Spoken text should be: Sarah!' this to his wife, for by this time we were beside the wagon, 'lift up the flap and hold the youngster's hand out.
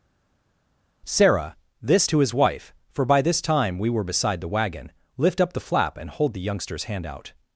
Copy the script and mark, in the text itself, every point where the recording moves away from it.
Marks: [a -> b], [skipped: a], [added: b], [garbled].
Sarah!' this to his wife, for by this time we were beside the wagon, 'lift up the flap and hold the youngster's hand out.